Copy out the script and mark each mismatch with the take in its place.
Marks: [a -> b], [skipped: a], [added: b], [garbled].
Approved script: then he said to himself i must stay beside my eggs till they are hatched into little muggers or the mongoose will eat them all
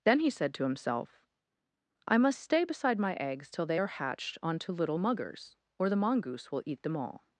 then he said to himself i must stay beside my eggs till they are hatched [into -> onto] little muggers or the mongoose will eat them all